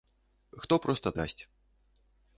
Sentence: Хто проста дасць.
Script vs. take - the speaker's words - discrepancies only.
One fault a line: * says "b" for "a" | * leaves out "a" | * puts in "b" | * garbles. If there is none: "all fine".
all fine